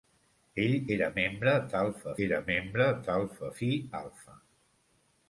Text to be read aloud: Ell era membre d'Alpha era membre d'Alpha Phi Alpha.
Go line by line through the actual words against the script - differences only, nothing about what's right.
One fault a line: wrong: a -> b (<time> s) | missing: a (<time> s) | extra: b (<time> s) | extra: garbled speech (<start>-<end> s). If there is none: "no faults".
no faults